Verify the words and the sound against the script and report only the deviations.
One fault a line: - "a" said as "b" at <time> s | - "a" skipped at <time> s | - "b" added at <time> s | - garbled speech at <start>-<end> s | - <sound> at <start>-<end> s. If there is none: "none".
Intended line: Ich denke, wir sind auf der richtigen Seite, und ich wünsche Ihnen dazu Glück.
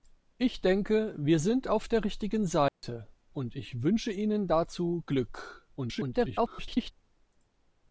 - dropout at 2.7-2.8 s
- garbled speech at 5.8-6.9 s